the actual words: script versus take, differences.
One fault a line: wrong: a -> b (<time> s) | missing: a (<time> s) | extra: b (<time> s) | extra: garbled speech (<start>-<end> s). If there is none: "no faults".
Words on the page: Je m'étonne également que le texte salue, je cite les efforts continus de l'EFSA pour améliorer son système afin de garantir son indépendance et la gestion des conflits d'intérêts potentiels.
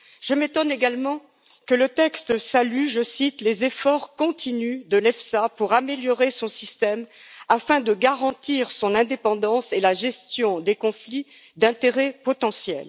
no faults